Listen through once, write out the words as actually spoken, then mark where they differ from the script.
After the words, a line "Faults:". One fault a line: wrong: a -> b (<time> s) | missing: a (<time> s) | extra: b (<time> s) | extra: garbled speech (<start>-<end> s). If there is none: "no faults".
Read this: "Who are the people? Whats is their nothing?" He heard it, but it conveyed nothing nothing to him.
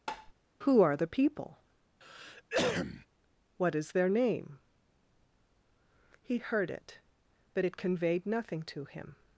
"Who are the people? What is their name?" He heard it, but it conveyed nothing to him.
Faults:
wrong: Whats -> What (3.6 s)
wrong: nothing -> name (4.1 s)
missing: nothing (8.6 s)